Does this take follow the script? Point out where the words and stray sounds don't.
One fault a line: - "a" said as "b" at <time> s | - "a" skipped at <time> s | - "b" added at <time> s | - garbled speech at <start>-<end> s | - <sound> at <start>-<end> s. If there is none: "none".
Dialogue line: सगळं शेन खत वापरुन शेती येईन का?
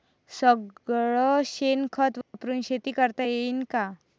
- dropout at 2.2-2.3 s
- "करता" added at 2.9 s